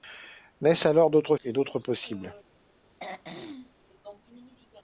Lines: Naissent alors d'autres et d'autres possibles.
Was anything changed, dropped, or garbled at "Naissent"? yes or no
no